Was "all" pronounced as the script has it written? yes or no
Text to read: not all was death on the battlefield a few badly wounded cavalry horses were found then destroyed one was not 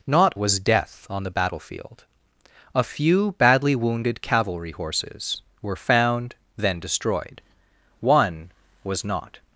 no